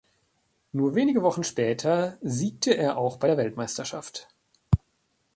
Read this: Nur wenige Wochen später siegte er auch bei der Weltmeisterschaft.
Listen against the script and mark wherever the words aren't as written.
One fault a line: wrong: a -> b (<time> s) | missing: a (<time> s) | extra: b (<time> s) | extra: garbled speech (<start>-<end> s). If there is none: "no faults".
no faults